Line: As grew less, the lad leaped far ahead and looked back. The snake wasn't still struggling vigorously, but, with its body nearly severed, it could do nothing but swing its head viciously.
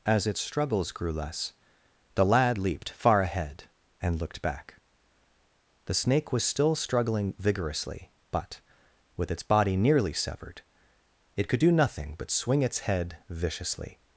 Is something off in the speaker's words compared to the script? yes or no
yes